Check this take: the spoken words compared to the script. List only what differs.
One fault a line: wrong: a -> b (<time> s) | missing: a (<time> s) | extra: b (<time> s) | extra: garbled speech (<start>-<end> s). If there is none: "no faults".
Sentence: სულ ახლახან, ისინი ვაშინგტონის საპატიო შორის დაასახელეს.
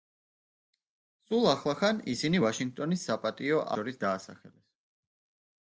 no faults